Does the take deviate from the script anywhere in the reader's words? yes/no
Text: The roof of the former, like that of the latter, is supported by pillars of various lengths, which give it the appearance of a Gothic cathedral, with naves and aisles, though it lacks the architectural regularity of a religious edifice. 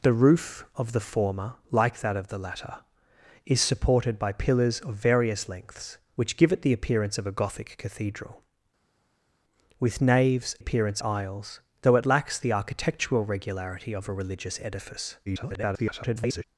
yes